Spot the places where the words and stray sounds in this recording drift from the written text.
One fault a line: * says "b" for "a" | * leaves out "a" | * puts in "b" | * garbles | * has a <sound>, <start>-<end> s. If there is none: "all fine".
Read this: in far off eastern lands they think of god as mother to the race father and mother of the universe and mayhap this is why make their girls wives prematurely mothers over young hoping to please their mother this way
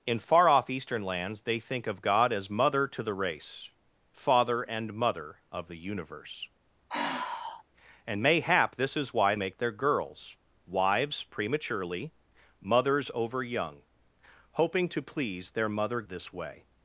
* has a sigh, 6.9-7.6 s